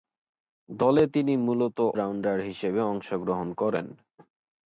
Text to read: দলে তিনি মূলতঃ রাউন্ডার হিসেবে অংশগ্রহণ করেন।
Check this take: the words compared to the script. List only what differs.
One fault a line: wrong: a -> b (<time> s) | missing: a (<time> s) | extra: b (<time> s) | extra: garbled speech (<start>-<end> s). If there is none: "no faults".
no faults